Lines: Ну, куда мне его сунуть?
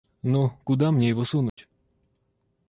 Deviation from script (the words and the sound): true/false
true